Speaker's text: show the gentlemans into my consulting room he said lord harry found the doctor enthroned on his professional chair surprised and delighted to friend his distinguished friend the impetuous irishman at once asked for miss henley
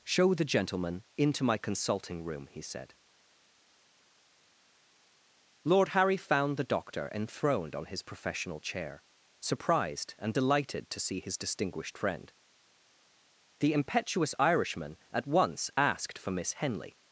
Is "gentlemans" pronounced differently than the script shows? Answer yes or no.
yes